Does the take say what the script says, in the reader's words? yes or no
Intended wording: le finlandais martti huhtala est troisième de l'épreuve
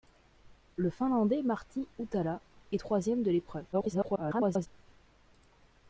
no